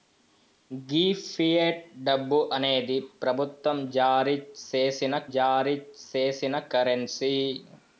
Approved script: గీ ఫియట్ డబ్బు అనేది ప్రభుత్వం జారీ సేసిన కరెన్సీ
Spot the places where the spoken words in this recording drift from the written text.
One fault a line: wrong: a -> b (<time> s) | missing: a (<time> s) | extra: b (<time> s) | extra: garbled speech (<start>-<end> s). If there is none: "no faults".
extra: జారీ సేసిన (5.3 s)